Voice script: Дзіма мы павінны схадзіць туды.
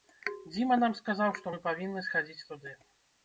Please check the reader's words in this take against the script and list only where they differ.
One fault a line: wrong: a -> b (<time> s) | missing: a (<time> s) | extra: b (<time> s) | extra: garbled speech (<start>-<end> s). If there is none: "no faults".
extra: нам сказаў што (0.8 s)